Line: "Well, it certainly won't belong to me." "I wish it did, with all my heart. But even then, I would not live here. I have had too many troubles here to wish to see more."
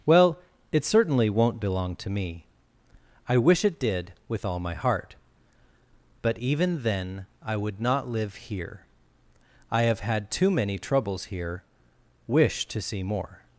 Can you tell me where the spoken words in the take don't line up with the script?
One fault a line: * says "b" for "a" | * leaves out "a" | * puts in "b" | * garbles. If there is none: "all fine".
* leaves out "to"